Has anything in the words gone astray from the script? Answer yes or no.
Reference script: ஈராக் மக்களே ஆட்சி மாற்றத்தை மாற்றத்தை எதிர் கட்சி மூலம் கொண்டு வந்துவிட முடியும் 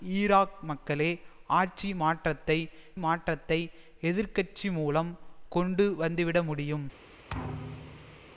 no